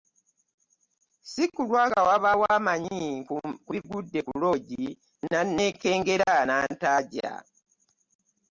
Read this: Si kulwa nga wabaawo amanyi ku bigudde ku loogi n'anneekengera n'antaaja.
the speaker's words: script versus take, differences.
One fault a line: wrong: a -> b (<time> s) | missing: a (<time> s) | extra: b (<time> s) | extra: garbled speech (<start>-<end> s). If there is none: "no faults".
no faults